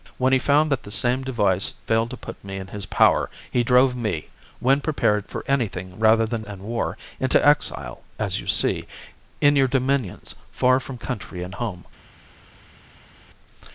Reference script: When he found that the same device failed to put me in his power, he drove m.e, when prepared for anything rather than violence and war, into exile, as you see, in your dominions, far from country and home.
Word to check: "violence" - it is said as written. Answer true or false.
false